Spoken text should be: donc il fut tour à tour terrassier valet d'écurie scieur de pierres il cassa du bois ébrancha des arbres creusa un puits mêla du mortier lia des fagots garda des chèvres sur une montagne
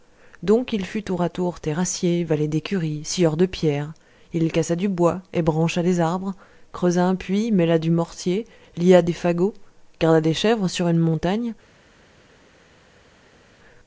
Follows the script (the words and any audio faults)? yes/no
yes